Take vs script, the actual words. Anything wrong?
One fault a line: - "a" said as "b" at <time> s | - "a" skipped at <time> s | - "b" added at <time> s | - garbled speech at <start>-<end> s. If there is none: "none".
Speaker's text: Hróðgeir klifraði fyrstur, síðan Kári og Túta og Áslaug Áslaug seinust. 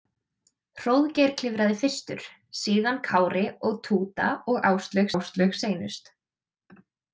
none